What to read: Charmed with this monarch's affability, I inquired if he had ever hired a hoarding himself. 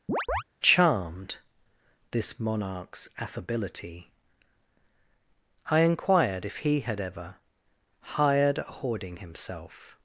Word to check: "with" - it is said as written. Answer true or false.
false